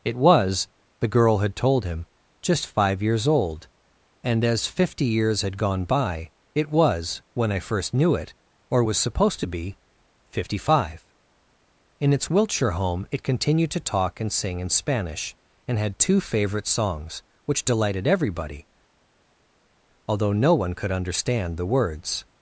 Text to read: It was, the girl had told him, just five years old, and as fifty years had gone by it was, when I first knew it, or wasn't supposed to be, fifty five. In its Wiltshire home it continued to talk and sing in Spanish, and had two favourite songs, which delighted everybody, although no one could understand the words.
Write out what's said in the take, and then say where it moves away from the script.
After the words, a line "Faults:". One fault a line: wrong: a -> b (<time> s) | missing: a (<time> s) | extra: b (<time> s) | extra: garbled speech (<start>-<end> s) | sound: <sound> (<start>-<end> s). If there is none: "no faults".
It was, the girl had told him, just five years old, and as fifty years had gone by it was, when I first knew it, or was supposed to be, fifty five. In its Wiltshire home it continued to talk and sing in Spanish, and had two favourite songs, which delighted everybody, although no one could understand the words.
Faults:
wrong: wasn't -> was (8.8 s)